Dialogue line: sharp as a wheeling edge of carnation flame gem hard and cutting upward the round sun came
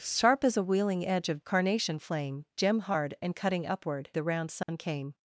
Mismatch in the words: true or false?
false